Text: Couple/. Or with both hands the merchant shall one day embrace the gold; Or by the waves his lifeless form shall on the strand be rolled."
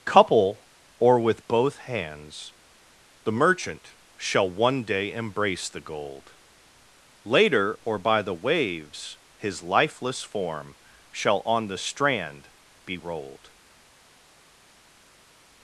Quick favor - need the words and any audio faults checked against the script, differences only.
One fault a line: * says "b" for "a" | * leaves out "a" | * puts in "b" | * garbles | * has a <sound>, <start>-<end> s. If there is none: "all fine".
* puts in "later"